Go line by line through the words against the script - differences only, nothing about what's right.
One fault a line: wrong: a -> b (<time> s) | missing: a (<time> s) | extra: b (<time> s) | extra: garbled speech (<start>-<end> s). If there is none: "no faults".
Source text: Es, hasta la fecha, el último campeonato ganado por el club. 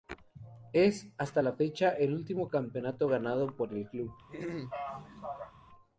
no faults